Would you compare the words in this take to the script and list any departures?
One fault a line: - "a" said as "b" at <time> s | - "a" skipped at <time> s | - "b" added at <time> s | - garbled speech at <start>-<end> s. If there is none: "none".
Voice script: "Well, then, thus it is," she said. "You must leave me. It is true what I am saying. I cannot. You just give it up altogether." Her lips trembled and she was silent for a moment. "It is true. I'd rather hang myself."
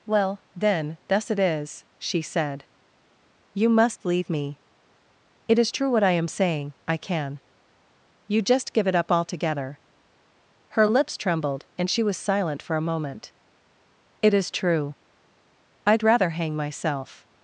- "cannot" said as "can" at 7.0 s